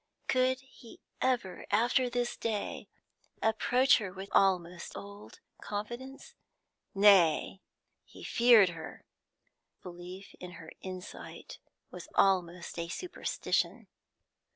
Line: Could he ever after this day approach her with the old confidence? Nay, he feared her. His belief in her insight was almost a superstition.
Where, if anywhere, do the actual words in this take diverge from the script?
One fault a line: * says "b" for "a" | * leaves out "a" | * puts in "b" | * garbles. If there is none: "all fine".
* says "almost" for "the"
* leaves out "His"